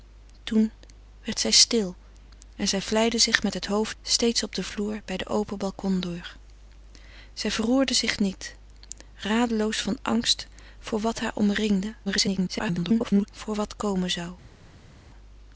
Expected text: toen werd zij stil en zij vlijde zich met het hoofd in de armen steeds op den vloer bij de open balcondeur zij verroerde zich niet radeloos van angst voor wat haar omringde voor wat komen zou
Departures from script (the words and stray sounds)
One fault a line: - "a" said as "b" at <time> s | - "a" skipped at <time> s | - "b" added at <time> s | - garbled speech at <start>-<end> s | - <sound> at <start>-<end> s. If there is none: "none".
- "in de armen" skipped at 4.0 s
- garbled speech at 12.1-13.3 s